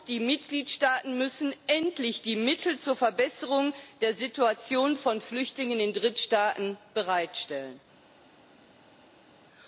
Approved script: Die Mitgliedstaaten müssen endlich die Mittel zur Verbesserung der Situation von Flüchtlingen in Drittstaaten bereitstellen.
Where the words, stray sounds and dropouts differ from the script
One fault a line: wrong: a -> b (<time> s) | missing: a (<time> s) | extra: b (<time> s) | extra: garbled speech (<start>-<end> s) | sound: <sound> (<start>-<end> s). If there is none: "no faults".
no faults